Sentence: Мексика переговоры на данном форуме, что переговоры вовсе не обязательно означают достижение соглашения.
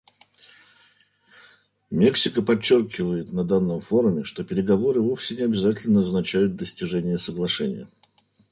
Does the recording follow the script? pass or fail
fail